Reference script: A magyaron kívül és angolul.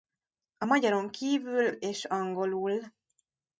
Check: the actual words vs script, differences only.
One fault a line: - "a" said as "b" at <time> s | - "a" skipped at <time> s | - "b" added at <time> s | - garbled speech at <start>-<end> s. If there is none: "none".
none